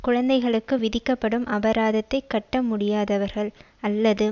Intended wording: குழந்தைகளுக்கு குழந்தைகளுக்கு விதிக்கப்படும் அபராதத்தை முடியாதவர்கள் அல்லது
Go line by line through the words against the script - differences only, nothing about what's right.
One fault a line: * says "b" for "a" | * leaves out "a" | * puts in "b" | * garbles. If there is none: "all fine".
* leaves out "குழந்தைகளுக்கு"
* puts in "கட்ட"